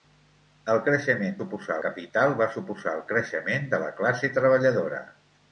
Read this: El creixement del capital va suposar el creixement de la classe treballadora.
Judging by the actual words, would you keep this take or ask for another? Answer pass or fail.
fail